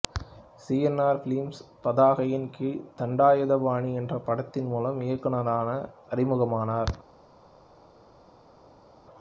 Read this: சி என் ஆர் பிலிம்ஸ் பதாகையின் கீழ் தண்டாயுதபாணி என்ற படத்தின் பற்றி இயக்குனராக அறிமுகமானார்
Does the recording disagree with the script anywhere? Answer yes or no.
yes